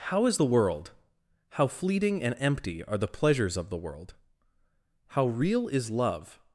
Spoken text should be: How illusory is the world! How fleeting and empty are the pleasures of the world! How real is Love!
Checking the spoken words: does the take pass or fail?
fail